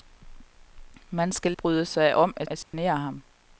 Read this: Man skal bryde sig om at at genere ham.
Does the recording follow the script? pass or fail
pass